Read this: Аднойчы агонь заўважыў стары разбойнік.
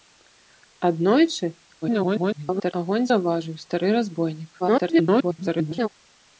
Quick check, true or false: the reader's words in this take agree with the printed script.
false